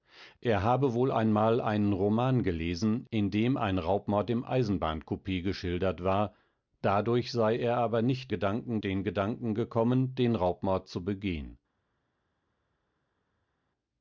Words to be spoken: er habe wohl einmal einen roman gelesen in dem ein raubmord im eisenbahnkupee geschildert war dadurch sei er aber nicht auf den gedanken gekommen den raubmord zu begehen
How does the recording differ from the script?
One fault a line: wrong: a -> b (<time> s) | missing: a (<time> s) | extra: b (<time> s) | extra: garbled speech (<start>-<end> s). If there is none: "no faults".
wrong: auf -> gedanken (8.3 s)